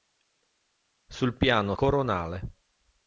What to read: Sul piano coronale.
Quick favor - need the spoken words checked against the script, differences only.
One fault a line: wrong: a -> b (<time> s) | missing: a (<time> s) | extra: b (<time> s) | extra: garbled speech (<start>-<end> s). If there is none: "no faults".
no faults